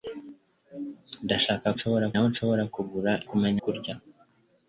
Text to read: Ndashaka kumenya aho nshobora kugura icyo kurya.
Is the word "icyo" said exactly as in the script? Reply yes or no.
no